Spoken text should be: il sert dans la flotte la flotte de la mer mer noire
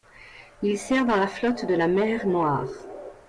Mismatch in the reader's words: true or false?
true